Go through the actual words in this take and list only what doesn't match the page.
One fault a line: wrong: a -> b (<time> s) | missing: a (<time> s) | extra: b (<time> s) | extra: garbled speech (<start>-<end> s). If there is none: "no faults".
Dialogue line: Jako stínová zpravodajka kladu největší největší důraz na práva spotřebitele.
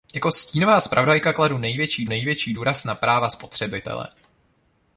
no faults